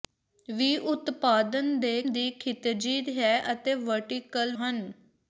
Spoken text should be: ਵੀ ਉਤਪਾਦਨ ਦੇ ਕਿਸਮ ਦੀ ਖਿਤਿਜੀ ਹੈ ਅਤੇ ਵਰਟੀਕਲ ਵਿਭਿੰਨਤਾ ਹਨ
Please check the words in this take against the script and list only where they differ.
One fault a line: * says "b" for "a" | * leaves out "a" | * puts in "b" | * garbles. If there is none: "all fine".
* leaves out "ਕਿਸਮ"
* leaves out "ਵਿਭਿੰਨਤਾ"